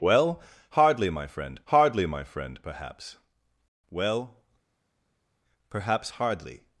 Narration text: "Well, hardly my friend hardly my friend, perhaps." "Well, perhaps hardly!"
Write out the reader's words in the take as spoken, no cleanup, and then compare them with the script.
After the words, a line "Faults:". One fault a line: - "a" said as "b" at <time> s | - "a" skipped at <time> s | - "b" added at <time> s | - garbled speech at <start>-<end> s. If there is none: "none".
"Well, hardly my friend hardly my friend, perhaps." "Well, perhaps hardly!"
Faults:
none